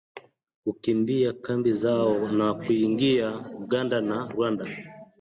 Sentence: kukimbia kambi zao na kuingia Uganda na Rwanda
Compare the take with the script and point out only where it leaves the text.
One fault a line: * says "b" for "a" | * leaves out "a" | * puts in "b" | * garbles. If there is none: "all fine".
all fine